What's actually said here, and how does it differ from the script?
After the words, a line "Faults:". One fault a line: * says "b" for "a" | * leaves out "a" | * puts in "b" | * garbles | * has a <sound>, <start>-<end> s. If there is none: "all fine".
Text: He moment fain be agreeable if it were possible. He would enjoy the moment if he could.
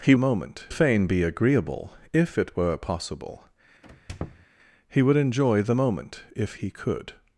He moment fain be agreeable if it were possible. He would enjoy the moment if he could.
Faults:
* has a squeak, 3.8-4.5 s